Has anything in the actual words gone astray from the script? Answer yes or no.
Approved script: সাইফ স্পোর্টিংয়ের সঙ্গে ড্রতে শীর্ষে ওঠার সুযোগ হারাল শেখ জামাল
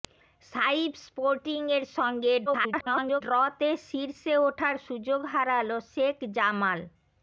yes